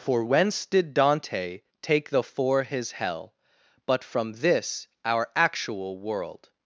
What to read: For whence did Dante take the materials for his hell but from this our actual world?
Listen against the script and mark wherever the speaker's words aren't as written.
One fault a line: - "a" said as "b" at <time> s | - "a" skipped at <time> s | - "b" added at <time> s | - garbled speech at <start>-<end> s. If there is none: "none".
- "materials" skipped at 2.2 s